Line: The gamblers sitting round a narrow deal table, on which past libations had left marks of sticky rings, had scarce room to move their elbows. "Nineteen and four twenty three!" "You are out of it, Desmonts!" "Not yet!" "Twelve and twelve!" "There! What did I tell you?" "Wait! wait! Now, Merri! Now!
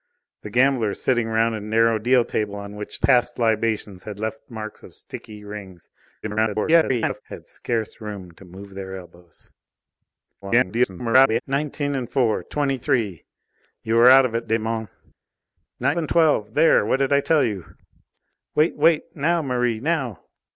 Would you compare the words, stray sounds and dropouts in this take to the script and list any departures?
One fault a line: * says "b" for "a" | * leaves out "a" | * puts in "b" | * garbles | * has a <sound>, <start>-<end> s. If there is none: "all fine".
* garbles
* garbles
* leaves out "yet Twelve"